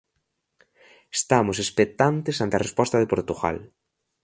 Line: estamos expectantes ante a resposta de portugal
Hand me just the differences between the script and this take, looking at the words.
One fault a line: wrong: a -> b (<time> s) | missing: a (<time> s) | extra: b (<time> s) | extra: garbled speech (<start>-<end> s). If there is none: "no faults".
no faults